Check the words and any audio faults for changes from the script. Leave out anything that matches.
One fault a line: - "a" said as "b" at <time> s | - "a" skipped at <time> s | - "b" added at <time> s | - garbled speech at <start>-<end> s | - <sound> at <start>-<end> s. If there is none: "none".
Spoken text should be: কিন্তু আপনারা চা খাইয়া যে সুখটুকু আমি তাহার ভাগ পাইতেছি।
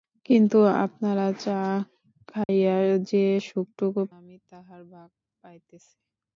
- dropout at 2.4-2.5 s